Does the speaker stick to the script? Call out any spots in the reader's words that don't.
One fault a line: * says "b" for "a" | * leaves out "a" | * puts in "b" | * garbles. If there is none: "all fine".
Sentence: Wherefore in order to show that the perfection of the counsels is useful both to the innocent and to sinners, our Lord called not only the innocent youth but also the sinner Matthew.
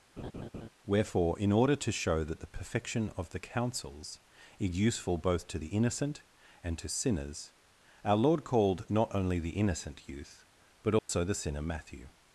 all fine